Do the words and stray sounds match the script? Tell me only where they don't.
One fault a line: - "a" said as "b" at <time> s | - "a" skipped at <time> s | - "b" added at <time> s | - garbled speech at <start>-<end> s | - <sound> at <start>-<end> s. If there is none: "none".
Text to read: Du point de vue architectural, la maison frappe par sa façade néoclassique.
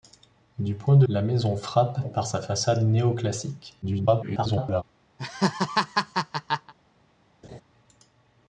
- "vue architectural" skipped at 1.1 s
- garbled speech at 3.8-4.8 s
- laugh at 5.2-6.7 s
- laugh at 7.4-7.6 s